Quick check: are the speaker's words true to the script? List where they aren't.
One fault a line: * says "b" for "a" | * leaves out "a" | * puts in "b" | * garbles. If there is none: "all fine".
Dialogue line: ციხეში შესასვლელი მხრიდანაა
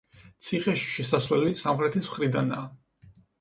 * puts in "სამხრეთის"